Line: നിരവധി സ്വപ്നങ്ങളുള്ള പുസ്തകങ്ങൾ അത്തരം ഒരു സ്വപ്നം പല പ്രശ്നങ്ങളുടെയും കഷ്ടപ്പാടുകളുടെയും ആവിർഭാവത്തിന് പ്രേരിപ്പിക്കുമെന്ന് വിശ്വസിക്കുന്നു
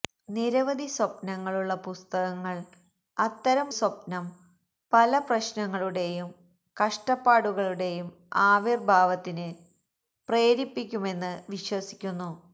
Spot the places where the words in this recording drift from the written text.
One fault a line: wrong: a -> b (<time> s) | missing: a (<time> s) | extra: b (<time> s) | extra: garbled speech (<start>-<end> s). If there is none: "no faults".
missing: ഒരു (3.7 s)